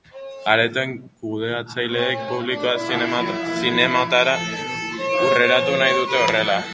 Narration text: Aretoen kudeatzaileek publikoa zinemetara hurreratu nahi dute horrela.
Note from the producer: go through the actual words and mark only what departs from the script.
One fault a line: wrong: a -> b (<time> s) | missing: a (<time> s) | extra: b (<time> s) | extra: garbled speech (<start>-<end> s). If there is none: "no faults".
no faults